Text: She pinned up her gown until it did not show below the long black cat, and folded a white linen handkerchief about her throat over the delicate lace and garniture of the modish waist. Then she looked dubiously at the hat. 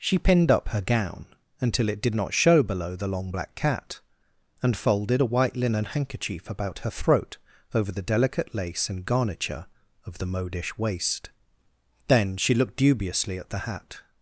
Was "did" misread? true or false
false